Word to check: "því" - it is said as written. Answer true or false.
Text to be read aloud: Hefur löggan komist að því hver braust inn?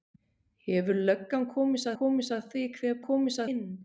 true